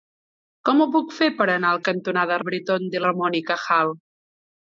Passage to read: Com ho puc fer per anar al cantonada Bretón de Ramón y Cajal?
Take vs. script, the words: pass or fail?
pass